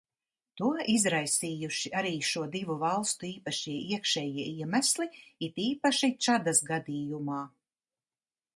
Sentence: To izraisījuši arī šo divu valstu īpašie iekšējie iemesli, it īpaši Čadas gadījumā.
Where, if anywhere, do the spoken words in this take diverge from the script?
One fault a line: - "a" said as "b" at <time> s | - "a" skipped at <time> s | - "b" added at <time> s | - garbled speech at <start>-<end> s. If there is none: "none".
none